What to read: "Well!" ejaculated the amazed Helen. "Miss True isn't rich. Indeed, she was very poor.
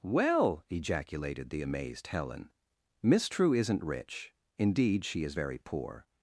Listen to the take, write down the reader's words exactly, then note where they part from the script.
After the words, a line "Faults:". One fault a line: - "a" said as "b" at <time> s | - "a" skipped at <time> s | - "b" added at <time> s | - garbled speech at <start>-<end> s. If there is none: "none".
"Well!" ejaculated the amazed Helen. "Miss True isn't rich. Indeed, she is very poor.
Faults:
- "was" said as "is" at 5.2 s